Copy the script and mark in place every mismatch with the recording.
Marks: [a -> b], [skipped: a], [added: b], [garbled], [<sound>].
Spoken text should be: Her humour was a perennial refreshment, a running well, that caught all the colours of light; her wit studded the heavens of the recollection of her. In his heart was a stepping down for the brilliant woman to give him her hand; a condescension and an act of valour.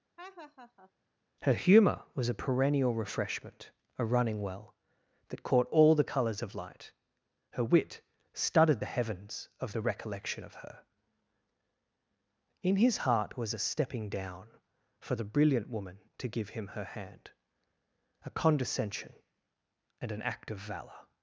[laugh] Her humour was a perennial refreshment, a running well, that caught all the colours of light; her wit studded the heavens of the recollection of her. In his heart was a stepping down for the brilliant woman to give him her hand; a condescension and an act of valour.